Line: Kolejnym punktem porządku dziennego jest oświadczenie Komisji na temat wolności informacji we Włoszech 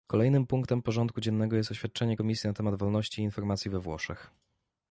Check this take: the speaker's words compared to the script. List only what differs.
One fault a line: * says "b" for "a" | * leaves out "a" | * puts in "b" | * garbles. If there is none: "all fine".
all fine